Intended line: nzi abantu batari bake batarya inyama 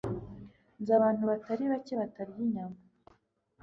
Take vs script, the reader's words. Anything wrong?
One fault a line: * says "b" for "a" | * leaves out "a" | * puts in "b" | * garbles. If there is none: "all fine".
all fine